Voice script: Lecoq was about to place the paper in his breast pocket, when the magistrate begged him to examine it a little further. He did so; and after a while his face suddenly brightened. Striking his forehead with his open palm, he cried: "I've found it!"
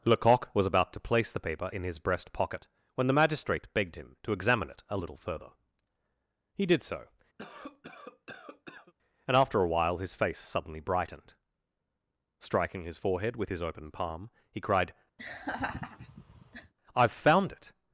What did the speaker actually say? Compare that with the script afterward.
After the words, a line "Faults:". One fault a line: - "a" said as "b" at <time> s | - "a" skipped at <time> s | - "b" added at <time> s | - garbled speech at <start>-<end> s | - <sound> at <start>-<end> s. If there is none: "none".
Lecoq was about to place the paper in his breast pocket, when the magistrate begged him to examine it a little further. He did so; and after a while his face suddenly brightened. Striking his forehead with his open palm, he cried: "I've found it!"
Faults:
- cough at 7.4-8.9 s
- laugh at 15.2-16.7 s